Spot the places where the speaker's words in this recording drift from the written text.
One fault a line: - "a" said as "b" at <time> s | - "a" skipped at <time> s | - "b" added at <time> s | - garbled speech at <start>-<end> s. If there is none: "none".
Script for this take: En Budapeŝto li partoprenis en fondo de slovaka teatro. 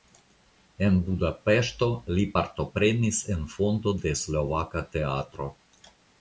none